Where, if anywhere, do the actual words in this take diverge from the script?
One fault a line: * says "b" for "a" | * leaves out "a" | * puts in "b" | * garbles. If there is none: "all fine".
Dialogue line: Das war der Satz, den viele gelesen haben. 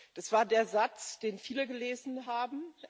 all fine